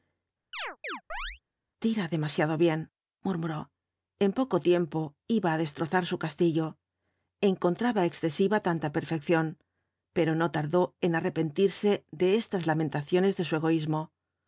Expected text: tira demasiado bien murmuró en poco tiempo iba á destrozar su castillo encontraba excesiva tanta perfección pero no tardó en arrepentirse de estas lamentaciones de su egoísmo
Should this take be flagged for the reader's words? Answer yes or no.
no